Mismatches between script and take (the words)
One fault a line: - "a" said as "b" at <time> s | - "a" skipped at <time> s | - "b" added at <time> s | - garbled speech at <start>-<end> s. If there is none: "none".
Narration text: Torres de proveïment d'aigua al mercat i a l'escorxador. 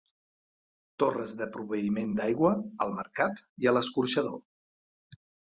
none